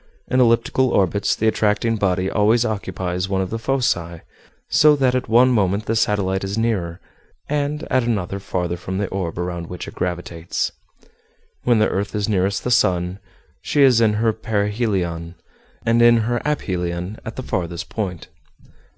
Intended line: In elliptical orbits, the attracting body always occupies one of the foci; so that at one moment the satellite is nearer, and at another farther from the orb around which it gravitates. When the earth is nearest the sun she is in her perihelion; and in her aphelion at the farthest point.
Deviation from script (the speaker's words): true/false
false